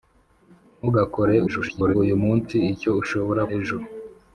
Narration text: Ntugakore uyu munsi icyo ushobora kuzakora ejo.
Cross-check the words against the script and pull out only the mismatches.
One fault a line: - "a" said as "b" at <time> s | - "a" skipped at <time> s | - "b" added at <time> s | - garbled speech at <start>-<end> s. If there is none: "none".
- garbled speech at 1.5-2.0 s
- "kuzakora" skipped at 3.4 s